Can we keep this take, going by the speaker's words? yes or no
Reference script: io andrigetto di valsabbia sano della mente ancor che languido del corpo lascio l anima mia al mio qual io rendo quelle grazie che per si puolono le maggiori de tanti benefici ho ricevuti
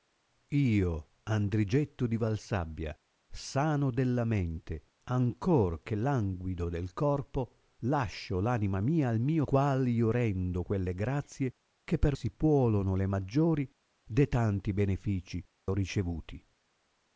yes